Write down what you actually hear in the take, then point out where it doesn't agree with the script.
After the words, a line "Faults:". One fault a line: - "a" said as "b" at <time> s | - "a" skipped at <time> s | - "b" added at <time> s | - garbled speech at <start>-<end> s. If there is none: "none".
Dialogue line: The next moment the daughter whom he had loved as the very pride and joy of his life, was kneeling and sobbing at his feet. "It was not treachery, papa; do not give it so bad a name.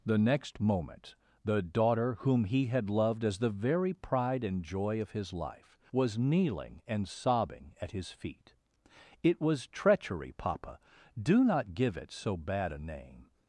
The next moment the daughter whom he had loved as the very pride and joy of his life, was kneeling and sobbing at his feet. "It was treachery, papa; do not give it so bad a name.
Faults:
- "not" skipped at 9.7 s